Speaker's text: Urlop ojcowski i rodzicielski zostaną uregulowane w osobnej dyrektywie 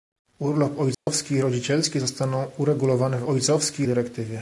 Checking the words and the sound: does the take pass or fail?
fail